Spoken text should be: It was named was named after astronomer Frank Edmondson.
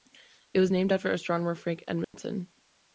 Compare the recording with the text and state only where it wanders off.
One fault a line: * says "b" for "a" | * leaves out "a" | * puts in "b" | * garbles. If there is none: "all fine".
* leaves out "was named"